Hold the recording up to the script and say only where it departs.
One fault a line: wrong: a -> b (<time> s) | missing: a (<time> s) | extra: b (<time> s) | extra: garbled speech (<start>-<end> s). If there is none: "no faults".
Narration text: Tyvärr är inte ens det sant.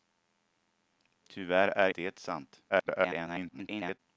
missing: inte ens (1.9 s)
extra: garbled speech (2.7-4.0 s)